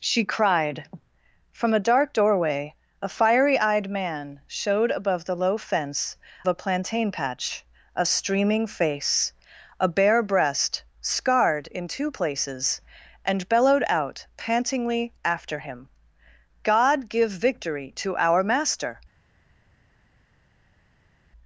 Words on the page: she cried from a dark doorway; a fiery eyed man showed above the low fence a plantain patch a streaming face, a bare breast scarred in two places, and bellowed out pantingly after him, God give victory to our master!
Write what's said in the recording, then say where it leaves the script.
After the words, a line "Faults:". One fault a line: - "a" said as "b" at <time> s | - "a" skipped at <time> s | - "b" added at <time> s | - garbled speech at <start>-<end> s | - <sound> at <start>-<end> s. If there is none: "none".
she cried from a dark doorway; a fiery eyed man showed above the low fence a plantain patch a streaming face, a bare breast scarred in two places, and bellowed out pantingly after him, God give victory to our master!
Faults:
none